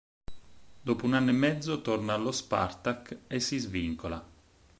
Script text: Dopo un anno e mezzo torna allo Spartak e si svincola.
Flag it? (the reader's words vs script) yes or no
no